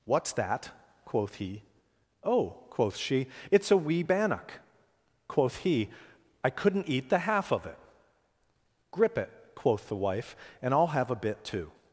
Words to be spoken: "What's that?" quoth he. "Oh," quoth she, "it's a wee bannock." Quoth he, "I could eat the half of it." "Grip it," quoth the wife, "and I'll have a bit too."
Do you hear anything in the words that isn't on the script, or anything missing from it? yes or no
yes